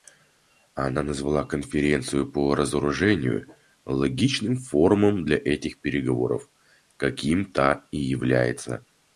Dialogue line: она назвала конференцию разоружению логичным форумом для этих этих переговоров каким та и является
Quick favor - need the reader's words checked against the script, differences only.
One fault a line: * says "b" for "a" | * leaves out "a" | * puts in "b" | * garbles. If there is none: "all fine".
* puts in "по"
* leaves out "этих"